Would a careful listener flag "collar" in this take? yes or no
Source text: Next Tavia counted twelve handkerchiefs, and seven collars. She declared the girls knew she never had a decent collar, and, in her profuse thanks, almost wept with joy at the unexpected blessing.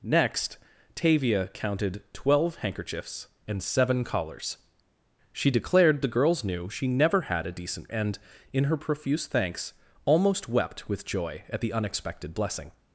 yes